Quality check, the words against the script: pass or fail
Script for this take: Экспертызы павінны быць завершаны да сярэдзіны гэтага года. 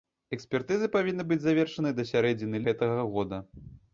pass